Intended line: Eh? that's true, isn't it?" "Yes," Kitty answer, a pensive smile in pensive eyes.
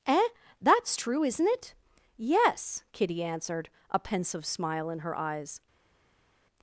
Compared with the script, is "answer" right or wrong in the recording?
wrong